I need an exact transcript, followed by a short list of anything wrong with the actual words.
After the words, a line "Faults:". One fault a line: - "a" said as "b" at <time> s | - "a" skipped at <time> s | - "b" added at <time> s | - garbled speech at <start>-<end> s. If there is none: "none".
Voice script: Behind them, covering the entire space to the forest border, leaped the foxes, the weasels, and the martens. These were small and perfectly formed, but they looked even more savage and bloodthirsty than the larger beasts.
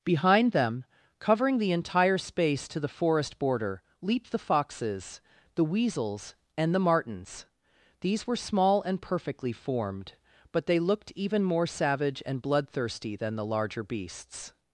Behind them, covering the entire space to the forest border, leaped the foxes, the weasels, and the martens. These were small and perfectly formed, but they looked even more savage and bloodthirsty than the larger beasts.
Faults:
none